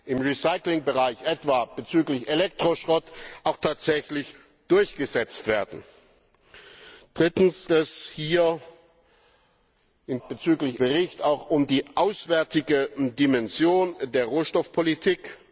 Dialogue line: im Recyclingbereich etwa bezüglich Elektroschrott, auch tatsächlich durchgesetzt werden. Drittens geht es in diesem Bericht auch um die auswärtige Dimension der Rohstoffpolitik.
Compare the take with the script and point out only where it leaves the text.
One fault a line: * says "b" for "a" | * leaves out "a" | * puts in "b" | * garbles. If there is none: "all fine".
* leaves out "geht"
* says "bezüglich" for "diesem"